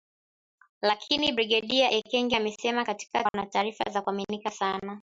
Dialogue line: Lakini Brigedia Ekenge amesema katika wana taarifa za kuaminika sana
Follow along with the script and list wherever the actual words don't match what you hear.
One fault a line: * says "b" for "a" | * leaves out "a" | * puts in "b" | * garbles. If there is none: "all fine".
all fine